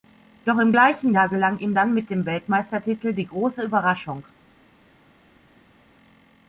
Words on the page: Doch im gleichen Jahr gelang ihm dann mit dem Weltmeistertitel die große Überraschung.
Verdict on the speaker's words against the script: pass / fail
pass